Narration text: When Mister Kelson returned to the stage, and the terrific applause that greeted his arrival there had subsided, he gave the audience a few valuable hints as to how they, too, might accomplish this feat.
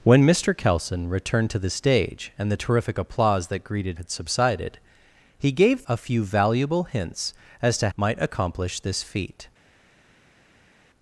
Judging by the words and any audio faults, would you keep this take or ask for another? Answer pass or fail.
fail